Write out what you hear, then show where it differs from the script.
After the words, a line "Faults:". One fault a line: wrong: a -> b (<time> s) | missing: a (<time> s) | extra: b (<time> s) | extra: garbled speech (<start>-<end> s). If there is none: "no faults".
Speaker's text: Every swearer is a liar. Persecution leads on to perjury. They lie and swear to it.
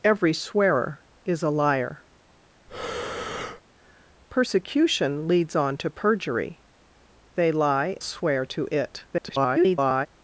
Every swearer is a liar. Persecution leads on to perjury. They lie swear to it. [garbled]
Faults:
missing: and (8.0 s)
extra: garbled speech (9.1-10.1 s)